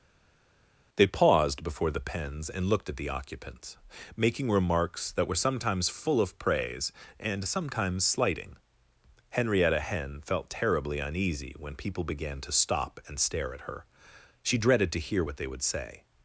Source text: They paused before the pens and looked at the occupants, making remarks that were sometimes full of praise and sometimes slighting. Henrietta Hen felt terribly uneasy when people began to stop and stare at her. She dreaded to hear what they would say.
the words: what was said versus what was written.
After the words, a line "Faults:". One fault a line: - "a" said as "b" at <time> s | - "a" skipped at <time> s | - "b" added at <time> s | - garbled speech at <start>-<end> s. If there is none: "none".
They paused before the pens and looked at the occupants, making remarks that were sometimes full of praise and sometimes slighting. Henrietta Hen felt terribly uneasy when people began to stop and stare at her. She dreaded to hear what they would say.
Faults:
none